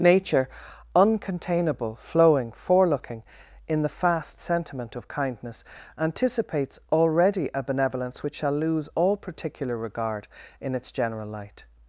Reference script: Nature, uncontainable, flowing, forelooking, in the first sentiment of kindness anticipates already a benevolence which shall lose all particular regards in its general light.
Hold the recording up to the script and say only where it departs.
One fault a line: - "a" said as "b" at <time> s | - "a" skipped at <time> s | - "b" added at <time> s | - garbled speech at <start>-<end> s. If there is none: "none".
- "first" said as "fast" at 3.9 s
- "regards" said as "regard" at 9.8 s